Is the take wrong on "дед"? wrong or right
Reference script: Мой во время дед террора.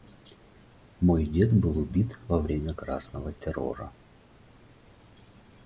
wrong